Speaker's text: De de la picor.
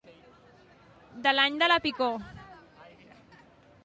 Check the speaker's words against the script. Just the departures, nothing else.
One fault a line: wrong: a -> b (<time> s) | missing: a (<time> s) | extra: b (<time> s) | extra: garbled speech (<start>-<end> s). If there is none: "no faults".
extra: l'any (1.4 s)